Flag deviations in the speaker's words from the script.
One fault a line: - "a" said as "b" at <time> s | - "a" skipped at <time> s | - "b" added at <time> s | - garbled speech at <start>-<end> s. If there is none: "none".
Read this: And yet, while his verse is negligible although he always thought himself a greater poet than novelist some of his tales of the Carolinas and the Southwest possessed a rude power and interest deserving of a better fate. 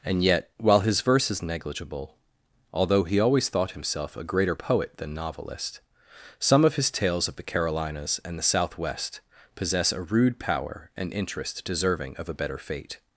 - "possessed" said as "possess" at 9.6 s